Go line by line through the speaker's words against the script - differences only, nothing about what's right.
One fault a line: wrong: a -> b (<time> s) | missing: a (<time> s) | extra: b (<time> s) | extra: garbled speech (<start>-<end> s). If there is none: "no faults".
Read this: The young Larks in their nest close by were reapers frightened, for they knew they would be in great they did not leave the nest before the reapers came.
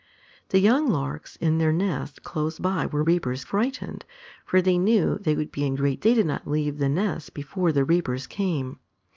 no faults